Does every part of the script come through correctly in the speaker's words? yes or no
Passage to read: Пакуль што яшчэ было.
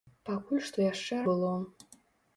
yes